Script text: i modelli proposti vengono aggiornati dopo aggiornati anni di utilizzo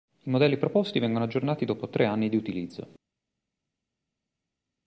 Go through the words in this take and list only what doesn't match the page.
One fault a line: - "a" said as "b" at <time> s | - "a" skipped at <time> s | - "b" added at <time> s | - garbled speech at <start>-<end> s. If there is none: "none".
- "aggiornati" said as "tre" at 1.9 s